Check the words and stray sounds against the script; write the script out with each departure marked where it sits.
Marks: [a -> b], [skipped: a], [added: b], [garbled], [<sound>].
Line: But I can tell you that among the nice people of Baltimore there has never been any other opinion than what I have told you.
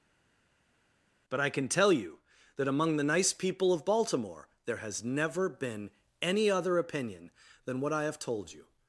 But I can tell you that among the nice people of Baltimore there has never been any other opinion than what I have told you.